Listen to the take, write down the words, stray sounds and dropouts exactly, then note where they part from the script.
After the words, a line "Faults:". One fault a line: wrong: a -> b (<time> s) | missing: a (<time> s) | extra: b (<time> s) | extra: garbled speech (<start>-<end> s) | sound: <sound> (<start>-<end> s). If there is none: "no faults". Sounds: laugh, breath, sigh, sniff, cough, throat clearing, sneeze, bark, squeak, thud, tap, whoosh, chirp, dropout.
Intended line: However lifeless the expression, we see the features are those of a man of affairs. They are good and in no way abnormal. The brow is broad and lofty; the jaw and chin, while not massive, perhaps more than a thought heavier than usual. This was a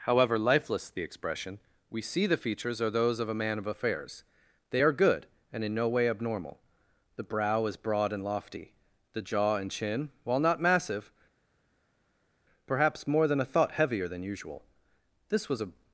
However lifeless the expression, we see the features are those of a man of affairs. They are good and in no way abnormal. The brow is broad and lofty; the jaw and chin, while not massive, perhaps more than a thought heavier than usual. This was a
Faults:
no faults